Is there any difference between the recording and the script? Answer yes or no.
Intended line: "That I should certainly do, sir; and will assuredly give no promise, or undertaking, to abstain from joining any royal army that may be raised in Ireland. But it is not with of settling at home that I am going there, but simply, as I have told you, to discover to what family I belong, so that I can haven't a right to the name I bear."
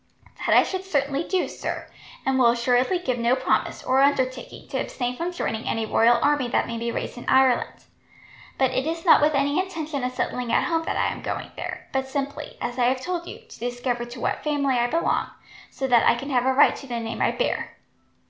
yes